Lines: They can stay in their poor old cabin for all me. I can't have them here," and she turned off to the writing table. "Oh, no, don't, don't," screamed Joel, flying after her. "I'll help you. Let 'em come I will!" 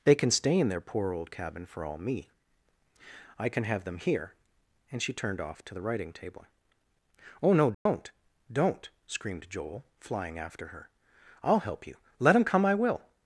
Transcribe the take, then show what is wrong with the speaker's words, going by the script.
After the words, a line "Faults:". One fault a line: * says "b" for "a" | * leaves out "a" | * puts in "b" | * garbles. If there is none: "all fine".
They can stay in their poor old cabin for all me. I can have them here," and she turned off to the writing table. "Oh, no, don't, don't," screamed Joel, flying after her. "I'll help you. Let 'em come I will!"
Faults:
* says "can" for "can't"